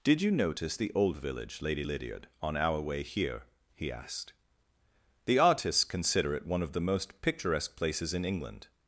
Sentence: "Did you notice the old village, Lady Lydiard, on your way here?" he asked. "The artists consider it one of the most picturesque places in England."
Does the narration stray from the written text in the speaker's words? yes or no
yes